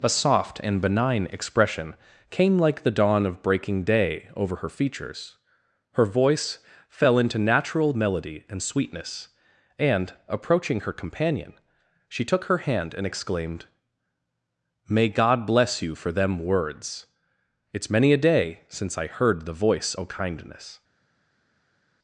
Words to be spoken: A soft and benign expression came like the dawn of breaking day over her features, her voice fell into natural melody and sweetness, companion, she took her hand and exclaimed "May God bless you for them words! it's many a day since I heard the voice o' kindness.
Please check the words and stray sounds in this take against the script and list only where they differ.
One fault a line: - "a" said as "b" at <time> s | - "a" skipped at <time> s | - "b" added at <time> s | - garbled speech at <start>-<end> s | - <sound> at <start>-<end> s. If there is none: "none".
- "and approaching her" added at 9.8 s